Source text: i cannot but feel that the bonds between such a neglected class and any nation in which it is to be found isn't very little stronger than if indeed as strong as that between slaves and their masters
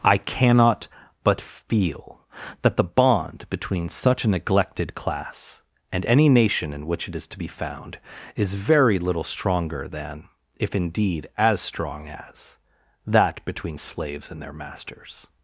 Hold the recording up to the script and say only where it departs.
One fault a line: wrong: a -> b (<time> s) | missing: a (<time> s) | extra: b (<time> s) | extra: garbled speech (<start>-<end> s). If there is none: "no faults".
wrong: bonds -> bond (2.8 s)
wrong: isn't -> is (8.4 s)